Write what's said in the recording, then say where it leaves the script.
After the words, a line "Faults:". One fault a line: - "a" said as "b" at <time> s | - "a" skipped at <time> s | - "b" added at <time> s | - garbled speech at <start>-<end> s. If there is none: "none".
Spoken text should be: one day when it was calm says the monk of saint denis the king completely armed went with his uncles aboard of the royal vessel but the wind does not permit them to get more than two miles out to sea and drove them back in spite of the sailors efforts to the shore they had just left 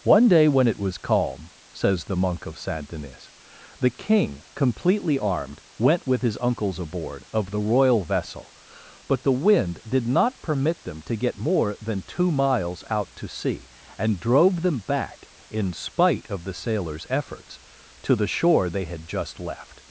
one day when it was calm says the monk of saint denis the king completely armed went with his uncles aboard of the royal vessel but the wind did not permit them to get more than two miles out to sea and drove them back in spite of the sailors efforts to the shore they had just left
Faults:
- "does" said as "did" at 9.9 s